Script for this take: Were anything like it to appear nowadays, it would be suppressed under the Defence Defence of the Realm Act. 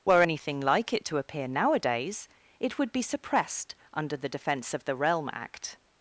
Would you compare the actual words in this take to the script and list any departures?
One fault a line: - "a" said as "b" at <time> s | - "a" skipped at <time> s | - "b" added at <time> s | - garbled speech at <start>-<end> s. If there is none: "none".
- "Defence" skipped at 4.7 s